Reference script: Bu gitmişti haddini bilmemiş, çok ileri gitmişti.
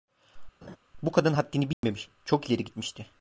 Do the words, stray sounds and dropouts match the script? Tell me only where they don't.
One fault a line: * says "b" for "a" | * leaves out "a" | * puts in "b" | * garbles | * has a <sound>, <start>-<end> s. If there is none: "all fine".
* has a laugh, 0.6-0.8 s
* says "kadın" for "gitmişti"
* has a dropout, 1.7-1.8 s